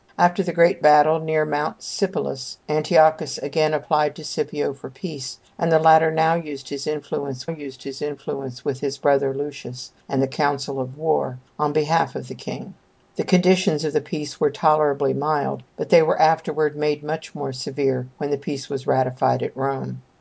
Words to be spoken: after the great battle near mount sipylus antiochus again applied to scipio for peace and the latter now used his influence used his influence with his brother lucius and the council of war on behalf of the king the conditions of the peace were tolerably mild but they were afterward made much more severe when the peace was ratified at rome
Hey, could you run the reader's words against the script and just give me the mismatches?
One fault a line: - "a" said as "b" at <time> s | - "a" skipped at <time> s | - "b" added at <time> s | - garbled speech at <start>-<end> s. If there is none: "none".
none